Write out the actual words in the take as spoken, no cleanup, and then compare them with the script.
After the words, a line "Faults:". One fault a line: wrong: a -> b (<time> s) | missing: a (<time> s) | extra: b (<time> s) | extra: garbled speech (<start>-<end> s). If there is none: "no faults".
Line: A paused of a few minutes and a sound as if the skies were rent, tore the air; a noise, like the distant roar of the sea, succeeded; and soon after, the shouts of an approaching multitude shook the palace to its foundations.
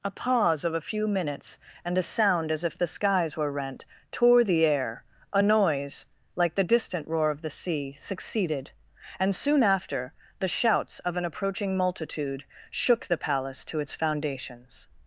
A pause of a few minutes and a sound as if the skies were rent, tore the air; a noise, like the distant roar of the sea, succeeded; and soon after, the shouts of an approaching multitude shook the palace to its foundations.
Faults:
wrong: paused -> pause (0.1 s)